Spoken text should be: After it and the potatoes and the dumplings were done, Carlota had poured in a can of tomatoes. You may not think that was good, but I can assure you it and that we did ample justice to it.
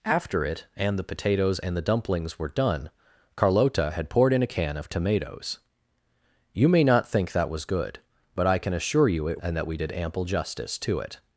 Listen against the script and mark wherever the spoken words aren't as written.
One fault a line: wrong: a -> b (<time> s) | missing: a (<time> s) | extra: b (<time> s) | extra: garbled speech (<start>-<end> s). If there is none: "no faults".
no faults